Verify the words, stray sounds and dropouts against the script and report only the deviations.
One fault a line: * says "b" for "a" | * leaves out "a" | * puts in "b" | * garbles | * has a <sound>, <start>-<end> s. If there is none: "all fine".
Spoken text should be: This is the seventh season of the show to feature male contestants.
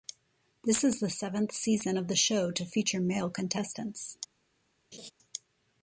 * has a laugh, 4.9-5.1 s